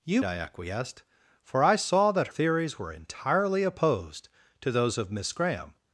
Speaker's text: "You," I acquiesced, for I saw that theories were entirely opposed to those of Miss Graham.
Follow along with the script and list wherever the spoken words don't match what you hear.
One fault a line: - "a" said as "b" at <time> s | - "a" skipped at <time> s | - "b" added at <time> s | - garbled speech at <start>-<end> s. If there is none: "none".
none